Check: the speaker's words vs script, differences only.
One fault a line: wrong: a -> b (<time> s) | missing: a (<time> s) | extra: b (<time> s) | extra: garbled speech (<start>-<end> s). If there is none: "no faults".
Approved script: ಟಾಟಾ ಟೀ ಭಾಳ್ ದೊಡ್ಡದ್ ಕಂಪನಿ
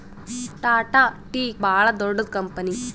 no faults